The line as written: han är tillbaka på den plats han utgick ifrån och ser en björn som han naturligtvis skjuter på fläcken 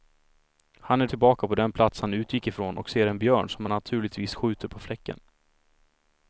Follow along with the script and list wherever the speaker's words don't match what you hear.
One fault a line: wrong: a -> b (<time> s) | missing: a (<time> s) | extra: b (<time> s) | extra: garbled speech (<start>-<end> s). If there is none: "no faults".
no faults